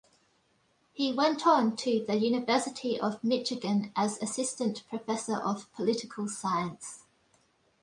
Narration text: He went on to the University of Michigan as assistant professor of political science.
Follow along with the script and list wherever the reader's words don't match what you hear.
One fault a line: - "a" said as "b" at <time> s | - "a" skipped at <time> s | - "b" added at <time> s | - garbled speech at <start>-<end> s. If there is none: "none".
none